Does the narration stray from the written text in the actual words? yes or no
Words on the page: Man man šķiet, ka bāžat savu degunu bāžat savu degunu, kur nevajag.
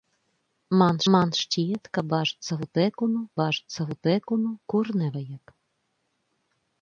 no